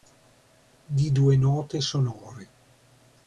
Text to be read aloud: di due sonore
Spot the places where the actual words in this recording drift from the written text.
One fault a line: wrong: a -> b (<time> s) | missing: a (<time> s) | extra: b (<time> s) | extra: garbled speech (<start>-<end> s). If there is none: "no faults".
extra: note (1.4 s)